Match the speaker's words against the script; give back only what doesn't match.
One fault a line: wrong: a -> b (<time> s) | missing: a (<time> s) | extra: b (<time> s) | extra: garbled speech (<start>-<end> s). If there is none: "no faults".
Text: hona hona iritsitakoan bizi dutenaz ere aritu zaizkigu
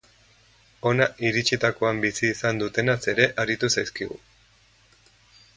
missing: hona (1.1 s)
extra: izan (2.4 s)